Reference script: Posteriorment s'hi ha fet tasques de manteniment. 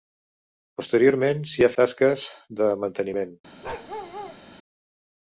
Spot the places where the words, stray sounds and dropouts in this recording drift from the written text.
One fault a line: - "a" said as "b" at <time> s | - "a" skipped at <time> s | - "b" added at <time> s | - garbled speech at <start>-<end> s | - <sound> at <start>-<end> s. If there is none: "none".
- "fet" skipped at 1.7 s
- bark at 3.6-4.4 s